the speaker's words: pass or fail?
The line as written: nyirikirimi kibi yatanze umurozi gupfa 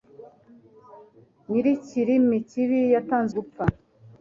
fail